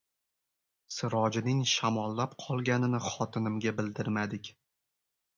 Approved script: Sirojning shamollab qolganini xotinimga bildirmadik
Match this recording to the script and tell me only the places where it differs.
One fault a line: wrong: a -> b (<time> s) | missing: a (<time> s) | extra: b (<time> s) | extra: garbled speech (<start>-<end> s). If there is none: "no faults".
no faults